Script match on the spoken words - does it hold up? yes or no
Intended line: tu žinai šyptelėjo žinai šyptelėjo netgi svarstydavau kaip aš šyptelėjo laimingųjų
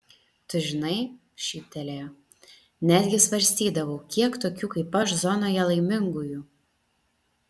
no